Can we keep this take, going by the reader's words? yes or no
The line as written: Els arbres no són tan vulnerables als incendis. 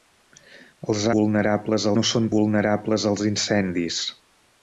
no